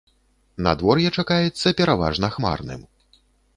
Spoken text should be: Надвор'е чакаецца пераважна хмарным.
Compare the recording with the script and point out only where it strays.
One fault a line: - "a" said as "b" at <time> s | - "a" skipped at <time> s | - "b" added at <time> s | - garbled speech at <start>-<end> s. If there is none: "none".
none